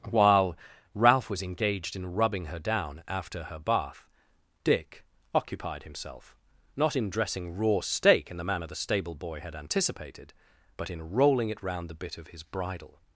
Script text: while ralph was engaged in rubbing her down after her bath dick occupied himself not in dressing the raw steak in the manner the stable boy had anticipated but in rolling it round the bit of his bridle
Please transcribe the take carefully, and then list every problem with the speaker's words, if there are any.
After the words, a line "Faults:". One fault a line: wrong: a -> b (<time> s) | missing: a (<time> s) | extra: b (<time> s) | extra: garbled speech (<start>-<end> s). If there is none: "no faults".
while ralph was engaged in rubbing her down after her bath dick occupied himself not in dressing raw steak in the manner the stable boy had anticipated but in rolling it round the bit of his bridle
Faults:
missing: the (7.5 s)